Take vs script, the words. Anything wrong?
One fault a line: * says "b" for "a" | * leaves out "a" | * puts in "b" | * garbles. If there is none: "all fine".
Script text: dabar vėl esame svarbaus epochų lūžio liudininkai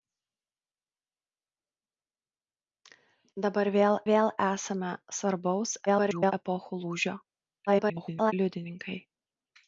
* puts in "vėl"
* garbles
* garbles